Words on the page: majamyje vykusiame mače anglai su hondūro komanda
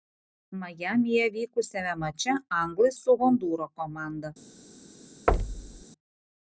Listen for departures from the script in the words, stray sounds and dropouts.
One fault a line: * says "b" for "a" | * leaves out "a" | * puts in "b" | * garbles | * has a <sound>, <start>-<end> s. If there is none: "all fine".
* has a thud, 5.3-5.8 s